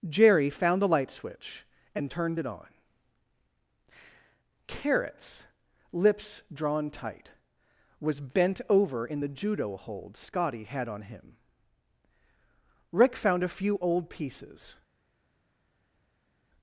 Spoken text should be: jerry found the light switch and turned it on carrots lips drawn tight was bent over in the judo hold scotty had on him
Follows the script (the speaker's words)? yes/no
no